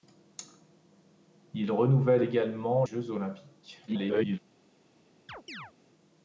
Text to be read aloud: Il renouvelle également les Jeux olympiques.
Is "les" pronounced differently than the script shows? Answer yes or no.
yes